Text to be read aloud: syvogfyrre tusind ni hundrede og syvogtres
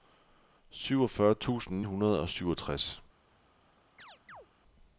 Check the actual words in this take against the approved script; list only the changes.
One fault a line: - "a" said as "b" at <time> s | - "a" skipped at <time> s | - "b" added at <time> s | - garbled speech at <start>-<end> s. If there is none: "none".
- "ni" skipped at 1.8 s